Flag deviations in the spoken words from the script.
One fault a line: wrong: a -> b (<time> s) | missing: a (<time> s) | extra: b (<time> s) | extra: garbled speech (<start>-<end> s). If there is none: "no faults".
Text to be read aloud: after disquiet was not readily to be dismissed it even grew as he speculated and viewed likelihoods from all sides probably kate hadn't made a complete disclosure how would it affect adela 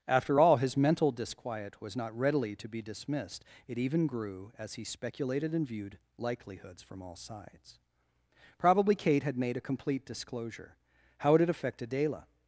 extra: all his mental (0.4 s)
wrong: hadn't -> had (9.2 s)